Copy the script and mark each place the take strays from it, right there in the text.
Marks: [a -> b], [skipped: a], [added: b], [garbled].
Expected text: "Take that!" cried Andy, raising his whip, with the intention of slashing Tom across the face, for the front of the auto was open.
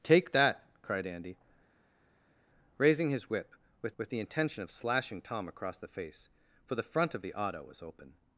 "Take that!" cried Andy, raising his whip, with [added: with] the intention of slashing Tom across the face, for the front of the auto was open.